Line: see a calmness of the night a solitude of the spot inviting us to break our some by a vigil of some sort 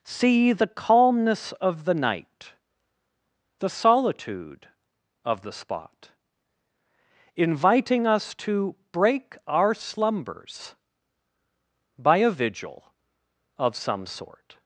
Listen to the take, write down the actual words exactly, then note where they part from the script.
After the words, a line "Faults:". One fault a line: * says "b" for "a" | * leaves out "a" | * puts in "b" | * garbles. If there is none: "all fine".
see the calmness of the night the solitude of the spot inviting us to break our slumbers by a vigil of some sort
Faults:
* says "the" for "a"
* says "the" for "a"
* says "slumbers" for "some"